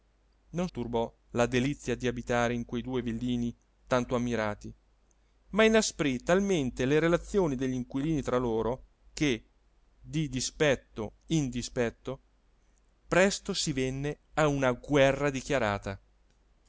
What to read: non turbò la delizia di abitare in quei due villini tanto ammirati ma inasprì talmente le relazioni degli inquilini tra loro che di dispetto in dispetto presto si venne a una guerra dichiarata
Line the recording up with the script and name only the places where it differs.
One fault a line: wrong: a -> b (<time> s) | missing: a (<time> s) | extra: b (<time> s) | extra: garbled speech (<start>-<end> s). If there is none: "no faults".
no faults